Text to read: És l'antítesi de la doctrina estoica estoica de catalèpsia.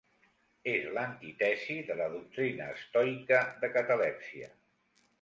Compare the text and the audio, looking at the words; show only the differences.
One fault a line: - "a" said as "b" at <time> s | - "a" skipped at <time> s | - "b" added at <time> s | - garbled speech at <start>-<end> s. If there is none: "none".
- "estoica" skipped at 3.5 s